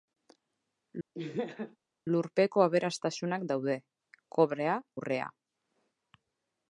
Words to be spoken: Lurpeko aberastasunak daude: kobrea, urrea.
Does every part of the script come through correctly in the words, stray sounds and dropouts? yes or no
no